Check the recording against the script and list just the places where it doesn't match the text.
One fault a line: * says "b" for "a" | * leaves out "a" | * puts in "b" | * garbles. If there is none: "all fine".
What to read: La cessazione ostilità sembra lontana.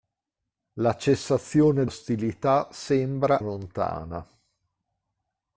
all fine